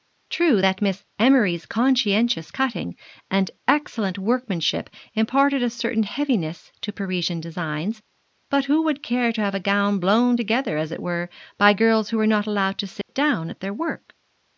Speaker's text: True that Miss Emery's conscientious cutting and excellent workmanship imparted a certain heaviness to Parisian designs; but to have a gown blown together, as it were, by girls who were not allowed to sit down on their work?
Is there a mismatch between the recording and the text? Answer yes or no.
yes